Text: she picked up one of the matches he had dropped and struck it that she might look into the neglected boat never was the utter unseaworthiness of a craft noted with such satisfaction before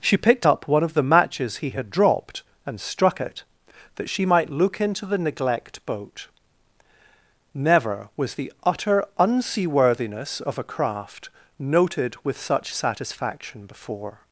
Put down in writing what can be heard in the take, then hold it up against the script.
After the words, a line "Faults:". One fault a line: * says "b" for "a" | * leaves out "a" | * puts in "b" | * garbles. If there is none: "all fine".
she picked up one of the matches he had dropped and struck it that she might look into the neglect boat never was the utter unseaworthiness of a craft noted with such satisfaction before
Faults:
* says "neglect" for "neglected"